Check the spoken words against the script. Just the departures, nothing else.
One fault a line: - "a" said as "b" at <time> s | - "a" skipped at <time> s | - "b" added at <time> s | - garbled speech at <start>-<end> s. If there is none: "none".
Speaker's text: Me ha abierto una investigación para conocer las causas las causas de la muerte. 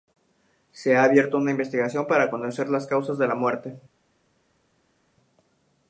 - "Me" said as "Se" at 0.7 s
- "las causas" skipped at 3.2 s